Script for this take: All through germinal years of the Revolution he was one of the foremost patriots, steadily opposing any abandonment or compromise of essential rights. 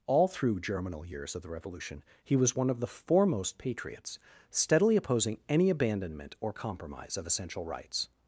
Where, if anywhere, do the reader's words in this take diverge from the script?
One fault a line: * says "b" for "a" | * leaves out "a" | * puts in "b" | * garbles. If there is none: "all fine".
all fine